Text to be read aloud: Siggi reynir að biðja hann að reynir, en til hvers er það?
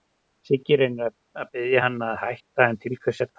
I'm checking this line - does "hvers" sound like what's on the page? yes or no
yes